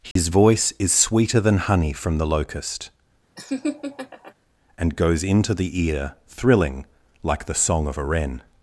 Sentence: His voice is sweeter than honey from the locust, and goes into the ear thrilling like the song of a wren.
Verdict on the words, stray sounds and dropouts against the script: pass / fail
fail